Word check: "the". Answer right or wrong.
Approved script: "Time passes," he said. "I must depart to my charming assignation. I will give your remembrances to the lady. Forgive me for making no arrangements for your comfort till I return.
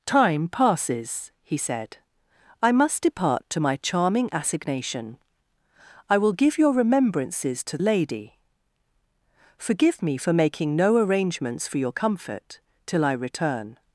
wrong